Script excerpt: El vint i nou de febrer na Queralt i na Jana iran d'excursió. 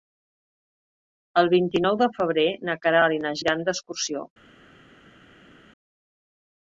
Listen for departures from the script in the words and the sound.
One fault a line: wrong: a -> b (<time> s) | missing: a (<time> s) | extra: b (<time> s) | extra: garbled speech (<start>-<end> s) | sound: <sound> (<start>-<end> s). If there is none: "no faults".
missing: Jana (3.4 s)